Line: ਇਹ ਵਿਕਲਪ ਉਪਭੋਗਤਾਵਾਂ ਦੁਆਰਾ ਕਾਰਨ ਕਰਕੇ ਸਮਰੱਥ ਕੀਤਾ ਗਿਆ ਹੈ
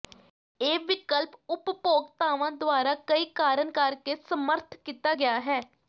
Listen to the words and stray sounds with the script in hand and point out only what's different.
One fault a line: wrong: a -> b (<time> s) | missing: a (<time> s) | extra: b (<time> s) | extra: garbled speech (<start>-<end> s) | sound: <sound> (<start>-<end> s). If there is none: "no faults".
extra: ਕਈ (3.0 s)